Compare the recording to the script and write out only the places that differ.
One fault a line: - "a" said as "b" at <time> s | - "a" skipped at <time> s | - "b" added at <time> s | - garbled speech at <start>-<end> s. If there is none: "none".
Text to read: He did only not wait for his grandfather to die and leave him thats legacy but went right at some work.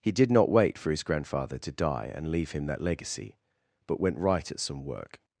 - "only" skipped at 0.3 s
- "thats" said as "that" at 2.6 s